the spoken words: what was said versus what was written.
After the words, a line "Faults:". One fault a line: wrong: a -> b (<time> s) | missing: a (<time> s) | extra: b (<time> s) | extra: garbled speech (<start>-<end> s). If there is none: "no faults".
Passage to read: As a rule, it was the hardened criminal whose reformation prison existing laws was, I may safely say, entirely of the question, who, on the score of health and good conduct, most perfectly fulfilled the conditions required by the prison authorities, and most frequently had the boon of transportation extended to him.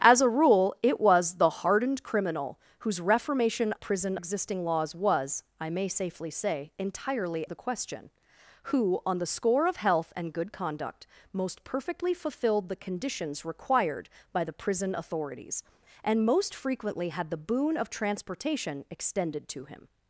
As a rule, it was the hardened criminal whose reformation prison existing laws was, I may safely say, entirely of the question, who, on the score of health and good conduct, most perfectly fulfilled the conditions required by the prison authorities, and most frequently had the boon of transportation extended to him.
Faults:
no faults